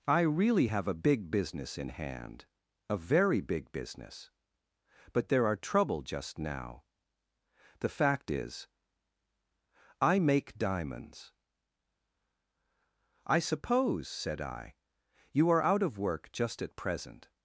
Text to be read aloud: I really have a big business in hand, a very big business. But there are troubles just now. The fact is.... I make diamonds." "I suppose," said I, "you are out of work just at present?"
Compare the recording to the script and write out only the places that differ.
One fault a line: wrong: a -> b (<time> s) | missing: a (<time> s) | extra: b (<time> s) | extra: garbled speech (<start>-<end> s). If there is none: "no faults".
wrong: troubles -> trouble (5.6 s)